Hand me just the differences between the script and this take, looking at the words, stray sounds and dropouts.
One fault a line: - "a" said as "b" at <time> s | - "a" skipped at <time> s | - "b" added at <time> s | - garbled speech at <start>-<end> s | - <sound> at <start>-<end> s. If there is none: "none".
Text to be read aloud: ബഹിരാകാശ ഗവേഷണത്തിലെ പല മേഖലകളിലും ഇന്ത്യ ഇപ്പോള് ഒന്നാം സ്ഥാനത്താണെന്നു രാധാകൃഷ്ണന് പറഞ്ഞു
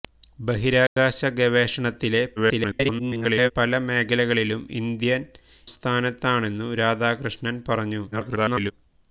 - dropout at 0.9-1.0 s
- garbled speech at 2.4-3.5 s
- "ഇപ്പോള് ഒന്നാം" skipped at 5.2 s
- garbled speech at 8.1-8.7 s